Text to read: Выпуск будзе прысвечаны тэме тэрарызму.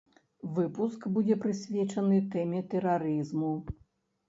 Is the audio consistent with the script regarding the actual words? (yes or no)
yes